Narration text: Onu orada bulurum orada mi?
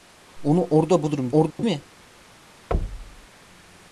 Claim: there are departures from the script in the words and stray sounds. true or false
true